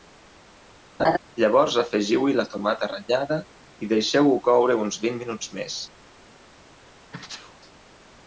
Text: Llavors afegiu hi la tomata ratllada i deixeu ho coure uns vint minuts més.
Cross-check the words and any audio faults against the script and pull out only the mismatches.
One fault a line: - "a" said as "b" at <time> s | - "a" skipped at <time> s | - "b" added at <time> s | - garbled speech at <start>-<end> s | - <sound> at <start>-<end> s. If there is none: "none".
- laugh at 1.0-1.2 s
- sneeze at 7.1-7.6 s